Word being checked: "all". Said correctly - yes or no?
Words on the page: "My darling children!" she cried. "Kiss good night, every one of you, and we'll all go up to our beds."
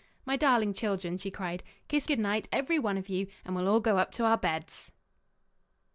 yes